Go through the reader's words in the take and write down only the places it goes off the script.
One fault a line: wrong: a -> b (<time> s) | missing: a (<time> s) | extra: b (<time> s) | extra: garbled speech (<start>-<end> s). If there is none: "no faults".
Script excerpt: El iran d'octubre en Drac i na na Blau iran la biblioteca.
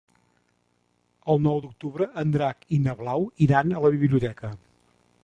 wrong: iran -> nou (1.5 s)
missing: na (2.9 s)
extra: a (3.7 s)